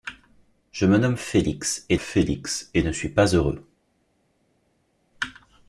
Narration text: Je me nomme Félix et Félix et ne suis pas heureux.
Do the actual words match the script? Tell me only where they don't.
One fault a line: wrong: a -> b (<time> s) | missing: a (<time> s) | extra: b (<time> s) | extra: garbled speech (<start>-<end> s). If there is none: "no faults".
no faults